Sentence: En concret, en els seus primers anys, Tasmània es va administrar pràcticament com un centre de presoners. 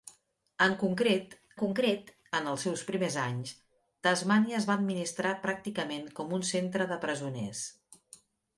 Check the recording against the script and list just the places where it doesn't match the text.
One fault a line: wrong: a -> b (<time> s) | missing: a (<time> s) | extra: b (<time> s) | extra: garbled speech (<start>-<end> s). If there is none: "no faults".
extra: concret (1.6 s)